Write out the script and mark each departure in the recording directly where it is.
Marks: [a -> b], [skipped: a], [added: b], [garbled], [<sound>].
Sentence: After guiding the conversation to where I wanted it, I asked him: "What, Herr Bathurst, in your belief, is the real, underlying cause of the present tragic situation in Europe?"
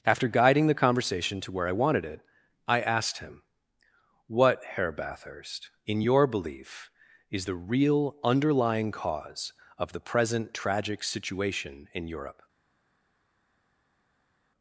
After guiding the conversation to where I wanted it, I asked him: "What, Herr Bathurst, in your belief, is the real, underlying cause of the present tragic situation in Europe?"